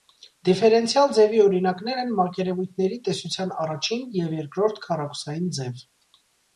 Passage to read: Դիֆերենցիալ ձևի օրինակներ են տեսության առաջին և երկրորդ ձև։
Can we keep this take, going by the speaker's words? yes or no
no